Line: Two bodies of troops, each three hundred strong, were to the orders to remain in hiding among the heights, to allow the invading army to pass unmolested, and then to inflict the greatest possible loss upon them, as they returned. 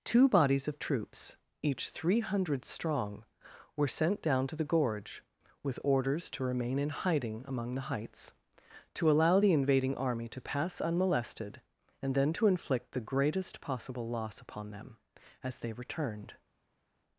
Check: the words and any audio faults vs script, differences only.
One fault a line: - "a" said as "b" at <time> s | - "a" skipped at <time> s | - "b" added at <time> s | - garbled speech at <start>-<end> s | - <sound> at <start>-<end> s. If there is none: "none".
- "sent down" added at 3.9 s
- "gorge with" added at 4.7 s